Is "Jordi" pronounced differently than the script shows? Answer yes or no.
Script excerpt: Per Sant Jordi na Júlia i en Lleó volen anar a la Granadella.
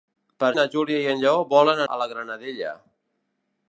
yes